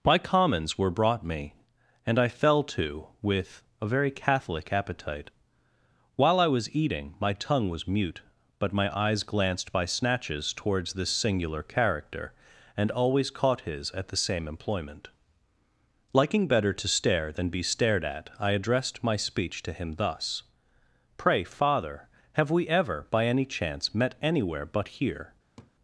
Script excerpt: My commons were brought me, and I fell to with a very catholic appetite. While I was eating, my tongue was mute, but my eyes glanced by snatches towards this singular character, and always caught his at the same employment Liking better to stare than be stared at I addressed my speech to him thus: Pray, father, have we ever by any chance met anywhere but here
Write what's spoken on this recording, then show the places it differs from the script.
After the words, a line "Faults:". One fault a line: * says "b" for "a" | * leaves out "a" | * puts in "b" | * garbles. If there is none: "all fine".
My commons were brought me, and I fell to with a very catholic appetite. While I was eating, my tongue was mute, but my eyes glanced by snatches towards this singular character, and always caught his at the same employment Liking better to stare than be stared at I addressed my speech to him thus: Pray, father, have we ever by any chance met anywhere but here
Faults:
all fine